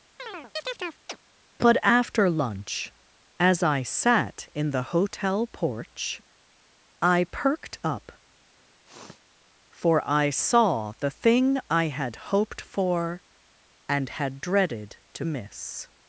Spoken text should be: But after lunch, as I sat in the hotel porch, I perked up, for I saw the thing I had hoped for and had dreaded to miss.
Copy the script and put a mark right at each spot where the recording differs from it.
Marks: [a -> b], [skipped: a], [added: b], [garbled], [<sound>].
[chirp] But after lunch, as I sat in the hotel porch, I perked up, [sniff] for I saw the thing I had hoped for and had dreaded to miss.